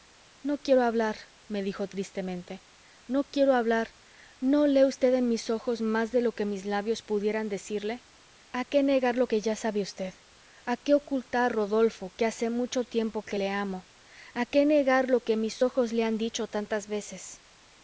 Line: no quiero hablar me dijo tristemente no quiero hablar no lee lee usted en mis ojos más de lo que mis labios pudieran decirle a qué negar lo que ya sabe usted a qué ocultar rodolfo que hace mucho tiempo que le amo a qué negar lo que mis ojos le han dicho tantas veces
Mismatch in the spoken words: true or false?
true